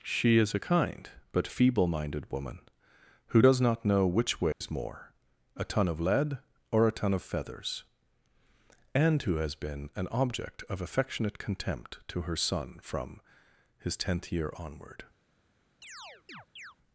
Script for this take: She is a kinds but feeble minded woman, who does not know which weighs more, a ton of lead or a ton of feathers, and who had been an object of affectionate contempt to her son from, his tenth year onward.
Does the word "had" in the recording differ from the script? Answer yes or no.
yes